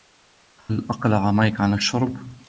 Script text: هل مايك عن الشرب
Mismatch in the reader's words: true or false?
true